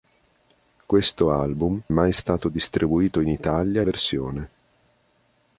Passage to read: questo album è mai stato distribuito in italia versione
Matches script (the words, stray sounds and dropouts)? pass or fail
pass